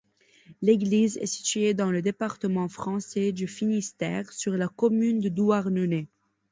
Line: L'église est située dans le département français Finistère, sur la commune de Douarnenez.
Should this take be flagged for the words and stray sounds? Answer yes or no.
yes